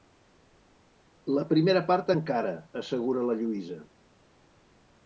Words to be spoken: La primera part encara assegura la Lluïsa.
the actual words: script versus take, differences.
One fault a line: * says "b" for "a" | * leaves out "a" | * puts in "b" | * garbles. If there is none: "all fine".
all fine